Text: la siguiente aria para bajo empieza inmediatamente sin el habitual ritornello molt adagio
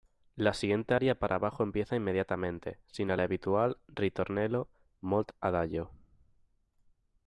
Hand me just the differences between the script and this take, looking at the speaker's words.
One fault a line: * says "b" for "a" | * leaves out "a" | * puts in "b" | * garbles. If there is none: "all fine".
all fine